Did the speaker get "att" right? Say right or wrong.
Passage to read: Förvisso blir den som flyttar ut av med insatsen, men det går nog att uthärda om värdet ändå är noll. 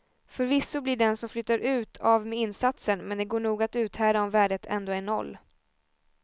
right